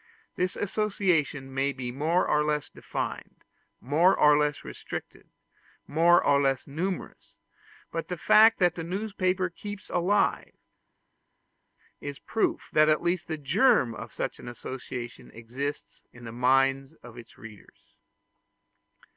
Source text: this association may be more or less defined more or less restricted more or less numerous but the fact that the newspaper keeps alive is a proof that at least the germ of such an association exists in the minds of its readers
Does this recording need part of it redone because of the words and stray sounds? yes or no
no